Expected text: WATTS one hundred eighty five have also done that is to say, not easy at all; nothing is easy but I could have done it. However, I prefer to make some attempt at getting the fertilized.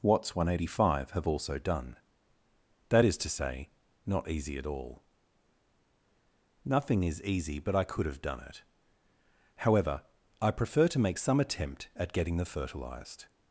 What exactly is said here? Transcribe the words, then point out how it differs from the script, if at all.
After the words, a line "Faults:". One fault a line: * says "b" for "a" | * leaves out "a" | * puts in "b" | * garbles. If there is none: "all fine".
WATTS one hundred eighty five have also done that is to say, not easy at all; nothing is easy but I could have done it. However, I prefer to make some attempt at getting the fertilized.
Faults:
all fine